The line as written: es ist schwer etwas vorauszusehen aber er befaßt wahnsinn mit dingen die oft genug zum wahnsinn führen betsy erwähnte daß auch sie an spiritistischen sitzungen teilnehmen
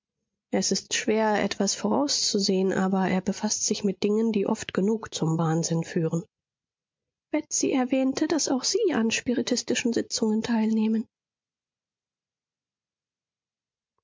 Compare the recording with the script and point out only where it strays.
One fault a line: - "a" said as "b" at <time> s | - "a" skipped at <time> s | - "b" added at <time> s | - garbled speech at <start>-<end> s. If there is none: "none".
- "wahnsinn" said as "sich" at 3.6 s